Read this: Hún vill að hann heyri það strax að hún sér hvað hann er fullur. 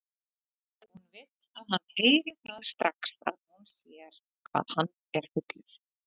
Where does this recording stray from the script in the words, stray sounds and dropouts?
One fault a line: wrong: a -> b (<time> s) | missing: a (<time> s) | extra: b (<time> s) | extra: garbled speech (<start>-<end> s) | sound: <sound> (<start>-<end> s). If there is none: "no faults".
no faults